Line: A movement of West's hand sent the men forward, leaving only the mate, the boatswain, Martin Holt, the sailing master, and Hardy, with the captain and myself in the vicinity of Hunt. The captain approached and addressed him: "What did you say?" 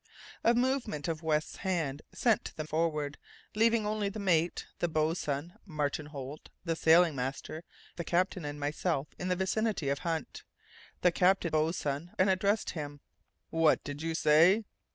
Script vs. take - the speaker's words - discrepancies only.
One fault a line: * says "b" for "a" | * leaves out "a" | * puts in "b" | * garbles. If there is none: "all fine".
* leaves out "men"
* leaves out "and Hardy with"
* says "boatswain" for "approached"